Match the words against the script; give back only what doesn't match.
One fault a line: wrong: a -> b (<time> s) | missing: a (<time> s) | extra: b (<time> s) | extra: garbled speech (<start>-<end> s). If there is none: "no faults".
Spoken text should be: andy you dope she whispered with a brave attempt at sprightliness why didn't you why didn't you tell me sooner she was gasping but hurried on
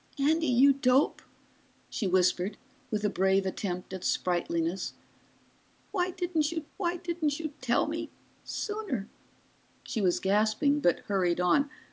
no faults